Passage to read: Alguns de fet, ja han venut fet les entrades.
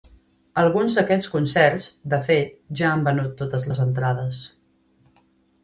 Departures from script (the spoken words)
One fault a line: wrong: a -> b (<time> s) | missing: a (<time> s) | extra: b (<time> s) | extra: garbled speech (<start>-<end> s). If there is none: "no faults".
extra: d'aquests concerts (1.0 s)
wrong: fet -> totes (3.5 s)